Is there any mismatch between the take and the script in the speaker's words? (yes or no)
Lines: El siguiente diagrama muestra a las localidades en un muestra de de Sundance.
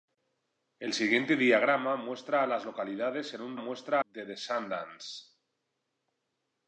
no